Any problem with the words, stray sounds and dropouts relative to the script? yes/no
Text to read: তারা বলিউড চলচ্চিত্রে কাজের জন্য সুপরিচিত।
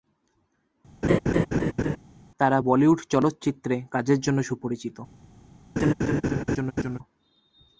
yes